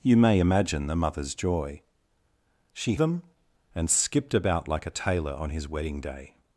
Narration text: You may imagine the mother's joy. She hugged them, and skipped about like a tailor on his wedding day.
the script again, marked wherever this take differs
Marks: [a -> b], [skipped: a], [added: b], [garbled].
You may imagine the mother's joy. She [skipped: hugged] them, and skipped about like a tailor on his wedding day.